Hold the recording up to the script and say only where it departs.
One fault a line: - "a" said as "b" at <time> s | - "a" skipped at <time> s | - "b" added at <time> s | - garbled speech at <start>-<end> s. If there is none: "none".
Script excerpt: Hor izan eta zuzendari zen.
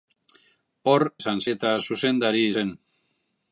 none